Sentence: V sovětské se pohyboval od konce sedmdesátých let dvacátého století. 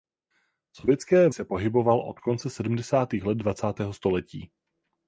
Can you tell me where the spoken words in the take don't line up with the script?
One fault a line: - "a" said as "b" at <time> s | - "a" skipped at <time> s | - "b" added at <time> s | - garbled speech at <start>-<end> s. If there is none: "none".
none